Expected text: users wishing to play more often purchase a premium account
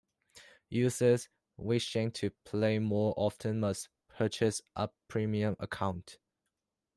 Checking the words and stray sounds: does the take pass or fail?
fail